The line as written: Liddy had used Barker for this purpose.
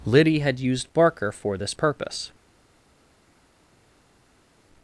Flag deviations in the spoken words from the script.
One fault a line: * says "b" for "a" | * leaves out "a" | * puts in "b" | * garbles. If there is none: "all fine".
all fine